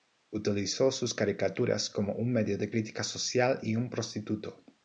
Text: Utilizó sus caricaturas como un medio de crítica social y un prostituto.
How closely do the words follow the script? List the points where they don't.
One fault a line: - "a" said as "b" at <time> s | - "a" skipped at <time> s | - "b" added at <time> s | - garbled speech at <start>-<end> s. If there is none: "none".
none